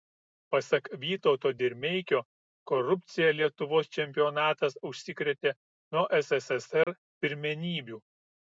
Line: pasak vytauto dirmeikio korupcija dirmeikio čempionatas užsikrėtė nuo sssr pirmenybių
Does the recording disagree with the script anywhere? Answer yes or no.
yes